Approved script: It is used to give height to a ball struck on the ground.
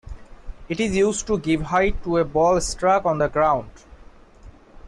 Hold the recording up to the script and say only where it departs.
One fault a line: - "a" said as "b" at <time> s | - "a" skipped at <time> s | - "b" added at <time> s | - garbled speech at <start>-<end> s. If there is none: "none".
none